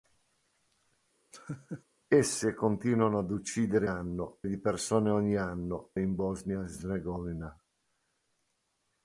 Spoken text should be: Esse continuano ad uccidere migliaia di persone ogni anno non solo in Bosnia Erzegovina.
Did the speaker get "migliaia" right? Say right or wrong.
wrong